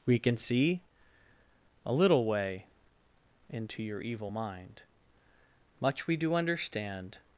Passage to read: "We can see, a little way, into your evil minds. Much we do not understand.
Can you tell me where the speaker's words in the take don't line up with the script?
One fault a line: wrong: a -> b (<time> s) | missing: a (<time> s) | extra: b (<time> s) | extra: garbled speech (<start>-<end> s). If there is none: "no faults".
wrong: minds -> mind (4.3 s)
missing: not (6.3 s)